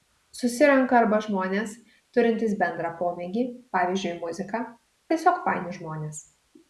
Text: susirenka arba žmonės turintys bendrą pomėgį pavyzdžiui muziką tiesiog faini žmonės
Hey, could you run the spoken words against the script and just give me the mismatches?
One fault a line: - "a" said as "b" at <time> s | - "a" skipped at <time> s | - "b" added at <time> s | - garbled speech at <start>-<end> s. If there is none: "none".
none